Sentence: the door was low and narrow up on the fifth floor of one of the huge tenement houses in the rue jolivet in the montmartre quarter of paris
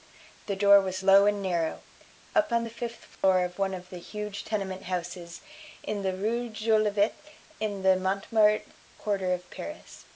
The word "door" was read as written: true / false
true